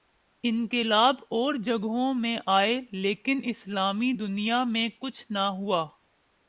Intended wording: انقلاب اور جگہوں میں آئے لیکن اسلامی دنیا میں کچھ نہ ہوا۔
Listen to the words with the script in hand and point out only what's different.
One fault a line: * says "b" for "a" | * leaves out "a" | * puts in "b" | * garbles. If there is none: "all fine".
all fine